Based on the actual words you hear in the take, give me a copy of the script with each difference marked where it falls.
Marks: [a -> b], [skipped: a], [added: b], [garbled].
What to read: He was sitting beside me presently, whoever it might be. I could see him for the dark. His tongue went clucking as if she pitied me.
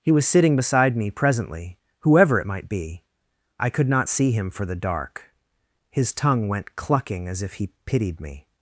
He was sitting beside me presently, whoever it might be. I could [added: not] see him for the dark. His tongue went clucking as if [she -> he] pitied me.